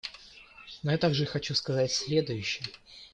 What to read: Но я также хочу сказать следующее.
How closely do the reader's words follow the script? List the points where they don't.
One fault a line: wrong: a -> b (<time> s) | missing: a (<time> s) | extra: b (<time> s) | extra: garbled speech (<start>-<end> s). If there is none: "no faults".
no faults